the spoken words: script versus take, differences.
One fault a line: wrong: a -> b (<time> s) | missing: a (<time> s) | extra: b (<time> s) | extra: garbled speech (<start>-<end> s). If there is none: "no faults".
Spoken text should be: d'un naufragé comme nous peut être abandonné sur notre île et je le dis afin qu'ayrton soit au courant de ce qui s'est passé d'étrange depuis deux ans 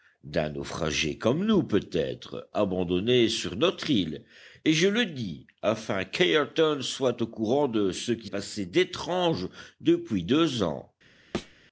missing: s'est (8.3 s)